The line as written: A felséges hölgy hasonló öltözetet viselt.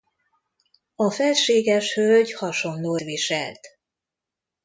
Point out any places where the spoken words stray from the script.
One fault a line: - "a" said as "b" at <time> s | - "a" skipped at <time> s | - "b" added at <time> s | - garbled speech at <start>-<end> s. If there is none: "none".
- "öltözetet" skipped at 3.0 s